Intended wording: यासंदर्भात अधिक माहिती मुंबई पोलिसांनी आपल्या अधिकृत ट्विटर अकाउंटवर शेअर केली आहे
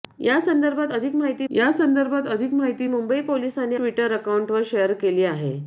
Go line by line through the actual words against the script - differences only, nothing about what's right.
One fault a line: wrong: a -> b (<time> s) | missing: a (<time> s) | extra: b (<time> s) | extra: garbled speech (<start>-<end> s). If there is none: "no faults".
extra: यासंदर्भात अधिक माहिती (1.5 s)
missing: आपल्या अधिकृत (3.7 s)